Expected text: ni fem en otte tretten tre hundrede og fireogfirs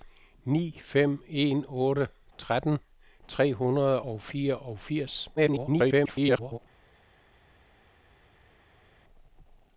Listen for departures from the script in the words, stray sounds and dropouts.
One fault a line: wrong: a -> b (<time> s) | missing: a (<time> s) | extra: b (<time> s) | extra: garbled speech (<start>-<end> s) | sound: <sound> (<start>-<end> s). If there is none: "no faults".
extra: garbled speech (5.4-6.6 s)